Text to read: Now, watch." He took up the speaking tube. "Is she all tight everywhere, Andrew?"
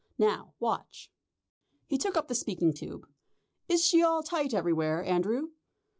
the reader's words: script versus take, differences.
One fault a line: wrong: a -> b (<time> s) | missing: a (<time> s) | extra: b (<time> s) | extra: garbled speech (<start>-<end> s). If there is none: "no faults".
no faults